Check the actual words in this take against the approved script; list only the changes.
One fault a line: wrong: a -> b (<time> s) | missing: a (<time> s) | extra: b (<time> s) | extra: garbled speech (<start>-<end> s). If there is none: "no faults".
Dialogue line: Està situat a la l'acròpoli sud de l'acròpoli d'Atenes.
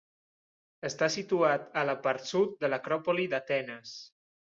wrong: l'acròpoli -> part (2.1 s)